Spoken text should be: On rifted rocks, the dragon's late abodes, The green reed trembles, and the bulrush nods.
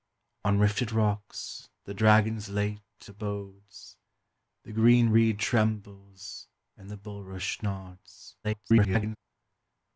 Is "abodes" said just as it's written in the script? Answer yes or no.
yes